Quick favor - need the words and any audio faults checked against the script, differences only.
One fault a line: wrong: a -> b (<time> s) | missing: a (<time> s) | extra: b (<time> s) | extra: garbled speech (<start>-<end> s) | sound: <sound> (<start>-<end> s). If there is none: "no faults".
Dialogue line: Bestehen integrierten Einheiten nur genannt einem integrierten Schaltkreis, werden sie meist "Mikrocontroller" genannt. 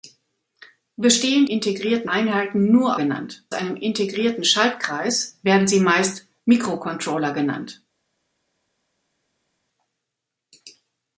no faults